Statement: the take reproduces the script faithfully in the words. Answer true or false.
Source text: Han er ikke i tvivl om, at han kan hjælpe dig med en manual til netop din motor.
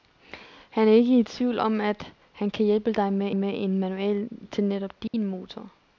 false